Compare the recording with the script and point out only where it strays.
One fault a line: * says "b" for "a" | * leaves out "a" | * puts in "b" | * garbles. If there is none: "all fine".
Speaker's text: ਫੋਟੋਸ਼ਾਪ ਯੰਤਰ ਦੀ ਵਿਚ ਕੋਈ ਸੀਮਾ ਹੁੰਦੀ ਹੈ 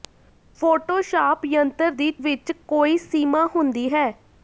all fine